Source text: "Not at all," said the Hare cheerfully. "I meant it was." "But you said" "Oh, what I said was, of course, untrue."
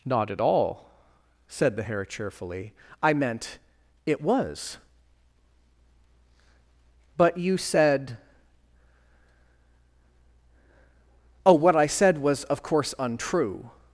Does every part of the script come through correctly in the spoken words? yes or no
yes